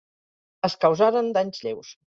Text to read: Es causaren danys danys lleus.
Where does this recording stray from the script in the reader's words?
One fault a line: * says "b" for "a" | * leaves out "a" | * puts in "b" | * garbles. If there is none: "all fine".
* leaves out "danys"